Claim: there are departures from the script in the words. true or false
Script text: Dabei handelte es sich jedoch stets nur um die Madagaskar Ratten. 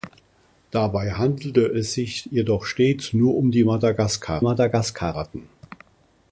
true